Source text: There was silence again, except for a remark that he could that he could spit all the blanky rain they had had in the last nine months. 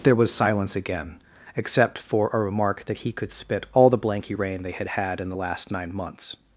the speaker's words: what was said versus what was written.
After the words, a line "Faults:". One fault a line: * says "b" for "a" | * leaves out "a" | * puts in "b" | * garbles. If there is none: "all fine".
There was silence again, except for a remark that he could spit all the blanky rain they had had in the last nine months.
Faults:
* leaves out "that he could"